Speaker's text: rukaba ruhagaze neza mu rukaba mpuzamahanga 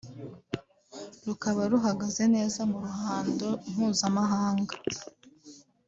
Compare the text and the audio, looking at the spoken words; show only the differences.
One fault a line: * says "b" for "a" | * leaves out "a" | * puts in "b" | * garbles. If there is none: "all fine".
* says "ruhando" for "rukaba"